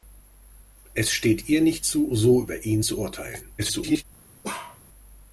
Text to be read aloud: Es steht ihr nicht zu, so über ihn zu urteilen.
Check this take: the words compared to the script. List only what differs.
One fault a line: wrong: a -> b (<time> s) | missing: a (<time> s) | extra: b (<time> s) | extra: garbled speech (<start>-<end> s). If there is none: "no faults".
extra: garbled speech (3.6-4.0 s)